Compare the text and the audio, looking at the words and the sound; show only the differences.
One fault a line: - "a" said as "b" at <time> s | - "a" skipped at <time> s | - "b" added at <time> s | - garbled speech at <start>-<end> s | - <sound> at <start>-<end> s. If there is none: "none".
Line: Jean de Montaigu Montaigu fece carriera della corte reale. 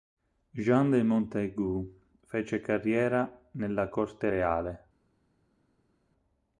- "Montaigu" skipped at 2.0 s
- "della" said as "nella" at 3.5 s